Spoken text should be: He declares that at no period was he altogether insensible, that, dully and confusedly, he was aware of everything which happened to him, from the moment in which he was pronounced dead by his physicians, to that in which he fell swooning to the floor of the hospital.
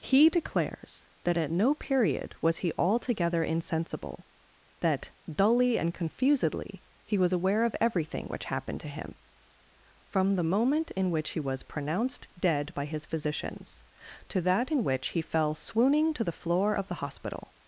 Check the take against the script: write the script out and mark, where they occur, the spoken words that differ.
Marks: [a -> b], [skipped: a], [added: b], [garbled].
He declares that at no period was he altogether insensible, that, dully and confusedly, he was aware of everything which happened to him, from the moment in which he was pronounced dead by his physicians, to that in which he fell swooning to the floor of the hospital.